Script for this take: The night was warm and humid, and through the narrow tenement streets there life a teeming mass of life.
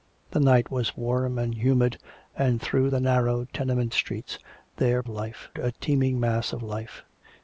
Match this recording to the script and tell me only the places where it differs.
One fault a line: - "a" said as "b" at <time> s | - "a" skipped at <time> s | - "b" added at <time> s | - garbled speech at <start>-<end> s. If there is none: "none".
none